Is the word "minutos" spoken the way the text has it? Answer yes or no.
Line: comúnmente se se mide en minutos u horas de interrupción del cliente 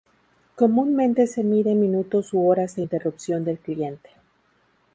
yes